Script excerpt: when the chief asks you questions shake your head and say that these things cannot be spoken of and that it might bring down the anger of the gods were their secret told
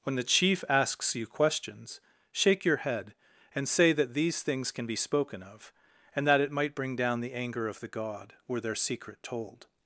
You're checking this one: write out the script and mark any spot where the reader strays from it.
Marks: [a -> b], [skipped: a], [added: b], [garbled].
when the chief asks you questions shake your head and say that these things [cannot -> can] be spoken of and that it might bring down the anger of the [gods -> god] were their secret told